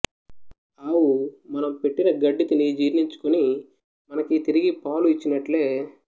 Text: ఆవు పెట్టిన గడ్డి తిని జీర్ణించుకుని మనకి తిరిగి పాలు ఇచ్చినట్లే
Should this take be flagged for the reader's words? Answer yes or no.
yes